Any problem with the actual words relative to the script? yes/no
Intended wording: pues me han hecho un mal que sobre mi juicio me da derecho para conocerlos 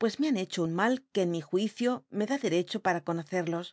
yes